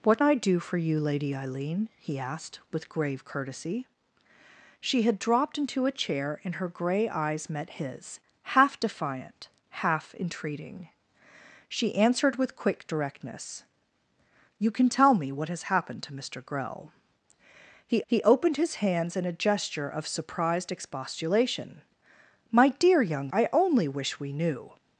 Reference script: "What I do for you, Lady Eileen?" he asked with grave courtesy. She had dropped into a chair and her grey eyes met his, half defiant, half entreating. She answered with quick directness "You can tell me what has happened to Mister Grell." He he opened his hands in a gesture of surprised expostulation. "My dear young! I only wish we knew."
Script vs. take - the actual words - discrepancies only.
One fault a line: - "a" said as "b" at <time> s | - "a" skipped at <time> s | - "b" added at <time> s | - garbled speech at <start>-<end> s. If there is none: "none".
none